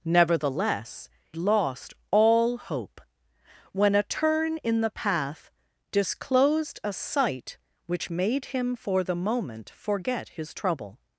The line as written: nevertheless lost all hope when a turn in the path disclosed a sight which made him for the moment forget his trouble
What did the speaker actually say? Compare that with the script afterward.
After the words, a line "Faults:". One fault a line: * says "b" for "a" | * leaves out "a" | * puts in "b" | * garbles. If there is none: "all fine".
nevertheless lost all hope when a turn in the path disclosed a sight which made him for the moment forget his trouble
Faults:
all fine